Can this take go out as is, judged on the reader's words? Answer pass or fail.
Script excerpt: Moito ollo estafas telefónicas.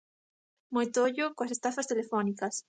fail